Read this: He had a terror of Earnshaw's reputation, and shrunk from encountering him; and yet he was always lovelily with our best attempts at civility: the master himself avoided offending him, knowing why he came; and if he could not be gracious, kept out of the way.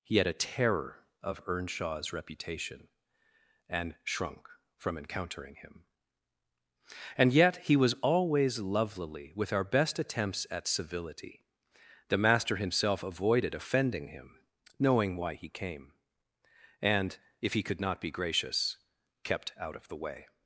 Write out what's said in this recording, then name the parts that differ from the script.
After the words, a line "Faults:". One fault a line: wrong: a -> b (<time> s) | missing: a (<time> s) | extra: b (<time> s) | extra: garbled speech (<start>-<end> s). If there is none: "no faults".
He had a terror of Earnshaw's reputation, and shrunk from encountering him; and yet he was always lovelily with our best attempts at civility: the master himself avoided offending him, knowing why he came; and if he could not be gracious, kept out of the way.
Faults:
no faults